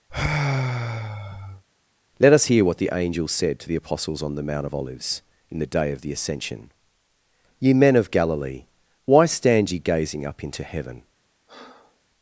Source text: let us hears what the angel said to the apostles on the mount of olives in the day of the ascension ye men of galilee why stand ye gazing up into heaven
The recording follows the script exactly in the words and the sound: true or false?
false